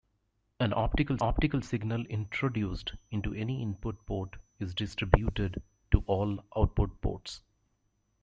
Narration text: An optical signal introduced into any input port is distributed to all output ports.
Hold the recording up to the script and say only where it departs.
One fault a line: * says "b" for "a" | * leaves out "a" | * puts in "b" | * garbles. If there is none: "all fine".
* puts in "optical"